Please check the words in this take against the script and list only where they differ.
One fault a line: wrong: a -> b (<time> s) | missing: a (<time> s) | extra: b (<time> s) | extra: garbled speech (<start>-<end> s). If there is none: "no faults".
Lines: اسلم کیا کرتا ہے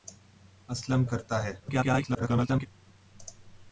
missing: کیا (1.1 s)
extra: garbled speech (1.6-2.7 s)